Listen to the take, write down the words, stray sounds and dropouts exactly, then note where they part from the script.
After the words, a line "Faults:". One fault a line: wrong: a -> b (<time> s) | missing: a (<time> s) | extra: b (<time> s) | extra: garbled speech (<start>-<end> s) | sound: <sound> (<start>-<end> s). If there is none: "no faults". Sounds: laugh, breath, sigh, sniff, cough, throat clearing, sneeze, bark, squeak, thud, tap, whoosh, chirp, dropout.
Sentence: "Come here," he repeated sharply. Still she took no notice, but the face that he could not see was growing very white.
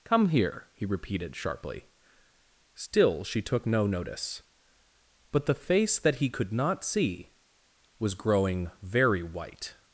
"Come here," he repeated sharply. Still she took no notice, but the face that he could not see was growing very white.
Faults:
no faults